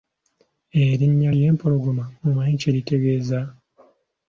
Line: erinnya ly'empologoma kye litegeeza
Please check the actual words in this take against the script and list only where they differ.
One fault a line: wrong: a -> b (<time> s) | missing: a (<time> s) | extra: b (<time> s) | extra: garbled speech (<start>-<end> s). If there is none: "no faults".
extra: omanyi (2.3 s)